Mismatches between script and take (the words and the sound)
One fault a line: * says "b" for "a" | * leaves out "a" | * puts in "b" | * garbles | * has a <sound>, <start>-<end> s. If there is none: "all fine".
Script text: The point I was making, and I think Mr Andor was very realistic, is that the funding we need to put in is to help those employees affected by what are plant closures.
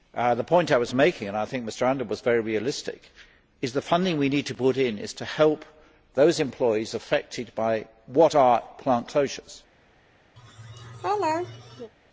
* has a laugh, 10.4-11.9 s